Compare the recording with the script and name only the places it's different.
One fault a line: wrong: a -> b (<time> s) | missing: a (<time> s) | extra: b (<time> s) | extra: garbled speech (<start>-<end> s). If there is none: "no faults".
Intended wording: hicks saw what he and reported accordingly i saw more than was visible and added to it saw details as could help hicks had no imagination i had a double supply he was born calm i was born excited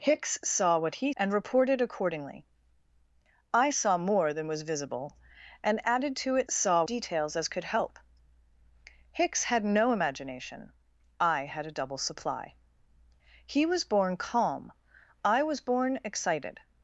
no faults